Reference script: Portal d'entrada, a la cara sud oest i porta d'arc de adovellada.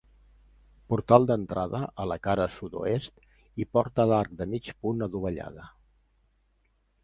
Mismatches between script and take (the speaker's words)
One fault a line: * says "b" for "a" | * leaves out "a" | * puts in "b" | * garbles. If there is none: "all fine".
* puts in "mig punt"